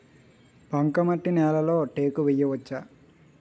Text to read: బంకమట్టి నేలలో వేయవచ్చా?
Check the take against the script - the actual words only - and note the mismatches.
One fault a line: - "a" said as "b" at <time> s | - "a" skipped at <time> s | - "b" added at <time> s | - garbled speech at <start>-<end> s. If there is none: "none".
- "టేకు" added at 1.8 s